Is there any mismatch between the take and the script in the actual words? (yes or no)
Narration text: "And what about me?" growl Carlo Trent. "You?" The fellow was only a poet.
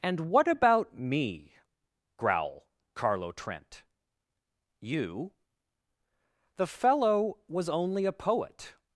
no